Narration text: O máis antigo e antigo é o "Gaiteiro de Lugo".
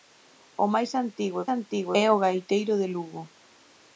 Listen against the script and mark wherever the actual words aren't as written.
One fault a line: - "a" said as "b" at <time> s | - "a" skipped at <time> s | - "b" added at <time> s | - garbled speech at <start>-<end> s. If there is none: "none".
none